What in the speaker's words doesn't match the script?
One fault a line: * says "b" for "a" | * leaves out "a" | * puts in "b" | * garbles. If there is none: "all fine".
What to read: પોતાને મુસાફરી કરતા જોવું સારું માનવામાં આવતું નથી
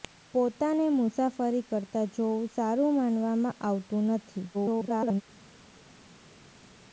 * garbles